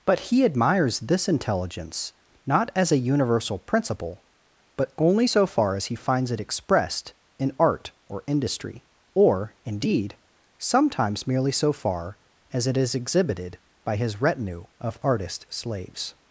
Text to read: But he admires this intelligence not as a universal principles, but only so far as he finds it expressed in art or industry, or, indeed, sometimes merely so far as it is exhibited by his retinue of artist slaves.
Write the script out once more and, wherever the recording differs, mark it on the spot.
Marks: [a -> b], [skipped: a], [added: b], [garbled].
But he admires this intelligence not as a universal [principles, -> principle] but only so far as he finds it expressed in art or industry, or, indeed, sometimes merely so far as it is exhibited by his retinue of artist slaves.